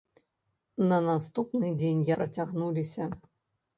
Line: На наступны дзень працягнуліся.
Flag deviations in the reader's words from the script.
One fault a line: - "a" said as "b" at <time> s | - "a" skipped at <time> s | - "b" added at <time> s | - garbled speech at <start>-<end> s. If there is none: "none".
none